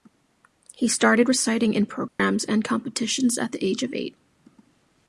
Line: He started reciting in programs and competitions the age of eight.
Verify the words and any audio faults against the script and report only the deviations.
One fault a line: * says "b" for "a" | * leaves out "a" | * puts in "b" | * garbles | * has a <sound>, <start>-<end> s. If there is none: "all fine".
* has a dropout, 2.1-2.2 s
* puts in "at"